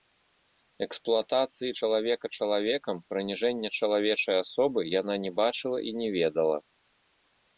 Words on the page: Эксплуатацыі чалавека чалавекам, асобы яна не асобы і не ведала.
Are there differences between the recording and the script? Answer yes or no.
yes